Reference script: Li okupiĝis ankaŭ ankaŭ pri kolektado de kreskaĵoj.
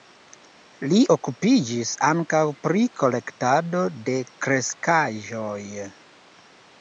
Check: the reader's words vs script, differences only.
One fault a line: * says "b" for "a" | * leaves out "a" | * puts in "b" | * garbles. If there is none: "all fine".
* leaves out "ankaŭ"